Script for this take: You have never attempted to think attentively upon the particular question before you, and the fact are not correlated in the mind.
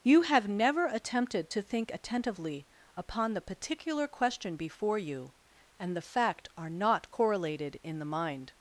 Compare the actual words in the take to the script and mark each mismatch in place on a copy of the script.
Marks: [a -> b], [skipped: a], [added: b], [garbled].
You have never attempted to think attentively upon the particular question before you, and the fact are not correlated in the mind.